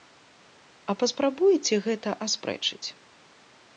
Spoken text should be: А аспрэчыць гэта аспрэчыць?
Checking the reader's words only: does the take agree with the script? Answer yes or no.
no